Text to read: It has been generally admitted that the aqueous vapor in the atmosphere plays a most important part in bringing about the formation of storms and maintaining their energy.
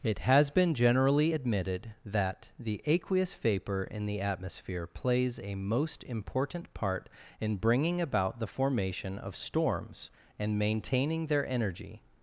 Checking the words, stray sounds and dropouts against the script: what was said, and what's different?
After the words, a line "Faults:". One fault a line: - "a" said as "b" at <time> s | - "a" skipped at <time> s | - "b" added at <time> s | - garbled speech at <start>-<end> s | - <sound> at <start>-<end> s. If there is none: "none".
It has been generally admitted that the aqueous vapor in the atmosphere plays a most important part in bringing about the formation of storms and maintaining their energy.
Faults:
none